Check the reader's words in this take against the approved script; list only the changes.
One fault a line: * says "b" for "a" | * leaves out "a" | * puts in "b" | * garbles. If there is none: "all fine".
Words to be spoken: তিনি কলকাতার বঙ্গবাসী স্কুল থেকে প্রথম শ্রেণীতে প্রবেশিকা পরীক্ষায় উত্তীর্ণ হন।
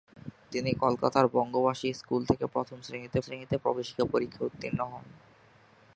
* puts in "শ্রেণীতে"